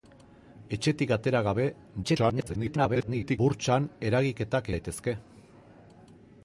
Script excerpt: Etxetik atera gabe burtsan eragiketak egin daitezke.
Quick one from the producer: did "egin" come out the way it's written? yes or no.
no